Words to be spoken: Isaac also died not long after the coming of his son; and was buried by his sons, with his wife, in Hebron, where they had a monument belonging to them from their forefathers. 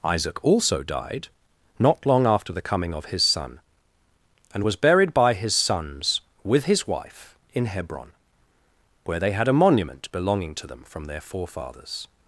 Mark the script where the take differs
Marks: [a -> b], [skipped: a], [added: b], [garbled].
Isaac also died not long after the coming of his son; and was buried by his sons, with his wife, in Hebron, where they had a monument belonging to them from their forefathers.